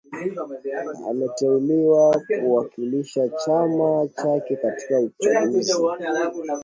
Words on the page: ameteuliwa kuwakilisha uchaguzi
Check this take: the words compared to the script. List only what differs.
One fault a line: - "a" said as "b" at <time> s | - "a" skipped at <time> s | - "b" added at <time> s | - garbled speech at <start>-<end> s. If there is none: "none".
- "chama chake katika" added at 3.3 s